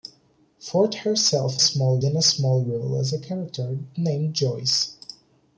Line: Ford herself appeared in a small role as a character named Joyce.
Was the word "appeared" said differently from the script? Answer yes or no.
yes